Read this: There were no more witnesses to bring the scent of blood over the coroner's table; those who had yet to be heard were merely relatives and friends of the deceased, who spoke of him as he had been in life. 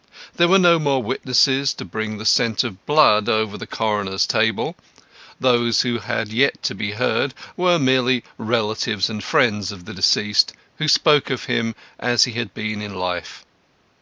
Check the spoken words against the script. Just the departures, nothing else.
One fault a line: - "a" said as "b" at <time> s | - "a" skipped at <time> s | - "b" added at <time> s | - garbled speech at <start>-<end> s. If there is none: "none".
none